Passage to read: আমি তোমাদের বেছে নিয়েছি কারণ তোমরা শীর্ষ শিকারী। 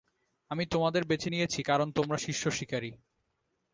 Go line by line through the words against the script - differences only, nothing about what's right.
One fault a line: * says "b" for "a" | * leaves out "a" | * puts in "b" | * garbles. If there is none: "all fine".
all fine